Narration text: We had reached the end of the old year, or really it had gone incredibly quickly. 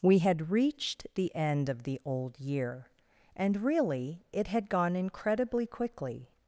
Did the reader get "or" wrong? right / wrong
wrong